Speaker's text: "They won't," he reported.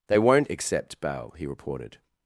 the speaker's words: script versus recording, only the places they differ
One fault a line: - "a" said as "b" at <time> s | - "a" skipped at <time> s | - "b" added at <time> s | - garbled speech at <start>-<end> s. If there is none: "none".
- "accept bail" added at 0.5 s